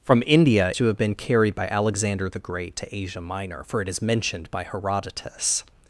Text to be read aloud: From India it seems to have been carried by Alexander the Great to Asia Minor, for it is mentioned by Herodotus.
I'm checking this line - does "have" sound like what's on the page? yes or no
yes